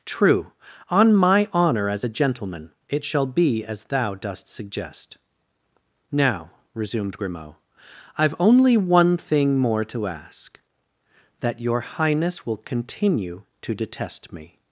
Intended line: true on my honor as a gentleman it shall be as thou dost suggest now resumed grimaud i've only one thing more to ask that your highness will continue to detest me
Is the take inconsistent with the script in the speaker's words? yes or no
no